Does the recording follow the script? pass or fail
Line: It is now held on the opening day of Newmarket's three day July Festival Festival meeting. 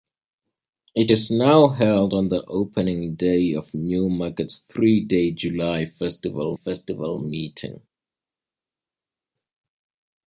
pass